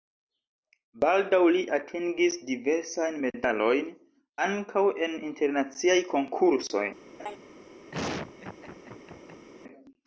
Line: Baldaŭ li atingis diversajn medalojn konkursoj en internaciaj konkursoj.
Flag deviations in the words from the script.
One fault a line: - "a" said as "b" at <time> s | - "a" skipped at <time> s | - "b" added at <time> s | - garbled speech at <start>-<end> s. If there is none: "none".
- "konkursoj" said as "ankaŭ" at 4.5 s